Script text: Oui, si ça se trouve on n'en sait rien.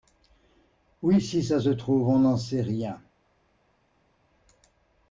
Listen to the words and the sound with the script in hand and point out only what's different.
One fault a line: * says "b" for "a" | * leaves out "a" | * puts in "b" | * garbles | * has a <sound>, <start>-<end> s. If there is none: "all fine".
all fine